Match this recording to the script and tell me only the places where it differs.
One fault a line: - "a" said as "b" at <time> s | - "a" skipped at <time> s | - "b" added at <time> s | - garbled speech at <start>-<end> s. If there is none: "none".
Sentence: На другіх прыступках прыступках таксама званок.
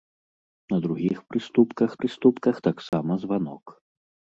none